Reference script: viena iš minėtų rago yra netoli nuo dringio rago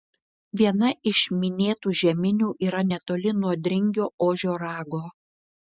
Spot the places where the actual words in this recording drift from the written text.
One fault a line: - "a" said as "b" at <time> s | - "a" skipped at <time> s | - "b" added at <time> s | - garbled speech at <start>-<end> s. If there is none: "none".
- "rago" said as "žeminių" at 2.0 s
- "ožio" added at 4.3 s